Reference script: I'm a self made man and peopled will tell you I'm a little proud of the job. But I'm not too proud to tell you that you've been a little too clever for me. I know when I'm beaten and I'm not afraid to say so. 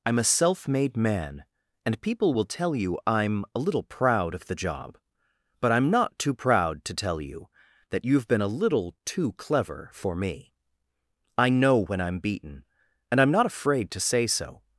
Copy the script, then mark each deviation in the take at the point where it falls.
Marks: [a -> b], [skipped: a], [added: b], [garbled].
I'm a self made man and [peopled -> people] will tell you I'm a little proud of the job. But I'm not too proud to tell you that you've been a little too clever for me. I know when I'm beaten and I'm not afraid to say so.